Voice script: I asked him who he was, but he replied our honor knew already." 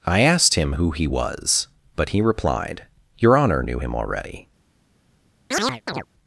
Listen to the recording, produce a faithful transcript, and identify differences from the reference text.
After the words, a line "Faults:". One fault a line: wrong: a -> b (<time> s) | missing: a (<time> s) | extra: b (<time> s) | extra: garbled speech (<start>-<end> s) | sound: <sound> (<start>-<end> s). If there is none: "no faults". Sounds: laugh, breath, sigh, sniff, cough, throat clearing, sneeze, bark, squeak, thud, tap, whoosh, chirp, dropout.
I asked him who he was, but he replied your honor knew him already."
Faults:
wrong: our -> your (3.2 s)
extra: him (3.8 s)
sound: chirp (5.5-6.1 s)